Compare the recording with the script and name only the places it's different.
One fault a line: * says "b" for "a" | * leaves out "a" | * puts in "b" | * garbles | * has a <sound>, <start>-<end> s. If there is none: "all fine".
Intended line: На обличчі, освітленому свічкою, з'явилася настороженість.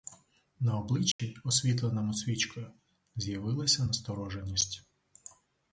* has a dropout, 1.1-1.2 s